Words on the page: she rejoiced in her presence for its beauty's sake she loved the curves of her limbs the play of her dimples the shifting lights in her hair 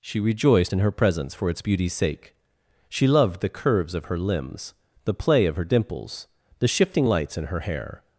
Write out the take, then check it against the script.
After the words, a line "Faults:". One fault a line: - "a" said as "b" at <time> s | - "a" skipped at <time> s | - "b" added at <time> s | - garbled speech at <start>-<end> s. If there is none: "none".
she rejoiced in her presence for its beauty's sake she loved the curves of her limbs the play of her dimples the shifting lights in her hair
Faults:
none